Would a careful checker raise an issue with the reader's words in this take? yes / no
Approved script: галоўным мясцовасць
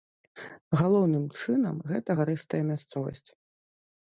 yes